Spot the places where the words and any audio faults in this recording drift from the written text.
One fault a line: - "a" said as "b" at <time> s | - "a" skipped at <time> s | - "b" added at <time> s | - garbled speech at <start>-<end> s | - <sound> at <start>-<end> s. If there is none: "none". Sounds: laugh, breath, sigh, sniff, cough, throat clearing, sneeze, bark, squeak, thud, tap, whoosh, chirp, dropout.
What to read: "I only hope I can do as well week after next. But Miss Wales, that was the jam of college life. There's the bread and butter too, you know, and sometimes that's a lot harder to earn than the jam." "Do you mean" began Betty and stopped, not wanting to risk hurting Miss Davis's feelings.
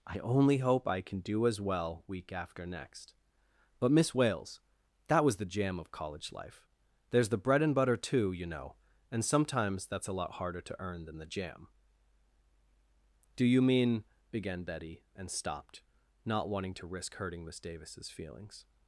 none